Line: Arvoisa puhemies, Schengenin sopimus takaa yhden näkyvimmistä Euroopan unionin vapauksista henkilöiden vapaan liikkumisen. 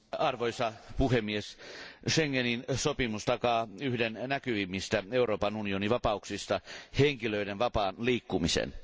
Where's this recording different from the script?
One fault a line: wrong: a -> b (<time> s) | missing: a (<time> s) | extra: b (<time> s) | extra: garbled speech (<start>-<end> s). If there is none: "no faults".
no faults